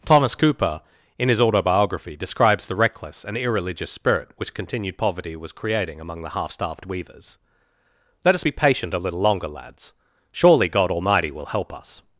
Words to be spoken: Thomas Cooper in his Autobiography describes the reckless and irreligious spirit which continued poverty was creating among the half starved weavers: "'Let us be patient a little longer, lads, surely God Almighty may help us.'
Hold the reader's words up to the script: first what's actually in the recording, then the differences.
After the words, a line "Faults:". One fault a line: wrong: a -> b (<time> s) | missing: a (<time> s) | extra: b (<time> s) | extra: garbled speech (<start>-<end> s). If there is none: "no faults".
Thomas Cooper in his Autobiography describes the reckless and irreligious spirit which continued poverty was creating among the half starved weavers: "'Let us be patient a little longer, lads, surely God Almighty will help us.'
Faults:
wrong: may -> will (11.3 s)